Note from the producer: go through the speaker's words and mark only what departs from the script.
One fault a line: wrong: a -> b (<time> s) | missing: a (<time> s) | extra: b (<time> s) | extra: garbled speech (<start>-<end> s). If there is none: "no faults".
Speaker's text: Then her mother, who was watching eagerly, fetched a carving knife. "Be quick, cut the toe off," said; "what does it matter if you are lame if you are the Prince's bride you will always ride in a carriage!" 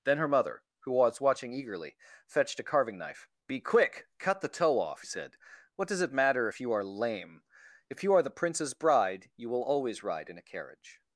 no faults